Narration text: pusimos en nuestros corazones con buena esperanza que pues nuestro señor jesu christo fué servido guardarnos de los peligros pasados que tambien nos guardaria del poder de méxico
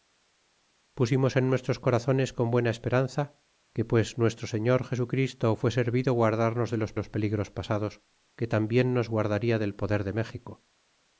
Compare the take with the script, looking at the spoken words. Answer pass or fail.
fail